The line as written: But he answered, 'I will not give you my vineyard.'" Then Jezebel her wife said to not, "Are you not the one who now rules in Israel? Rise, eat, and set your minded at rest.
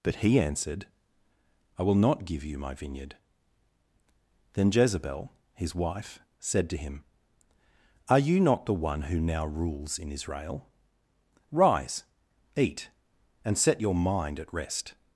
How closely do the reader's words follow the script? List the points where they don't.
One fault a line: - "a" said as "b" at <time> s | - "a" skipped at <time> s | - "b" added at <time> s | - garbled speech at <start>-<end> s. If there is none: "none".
- "her" said as "his" at 5.5 s
- "not" said as "him" at 6.8 s
- "minded" said as "mind" at 13.9 s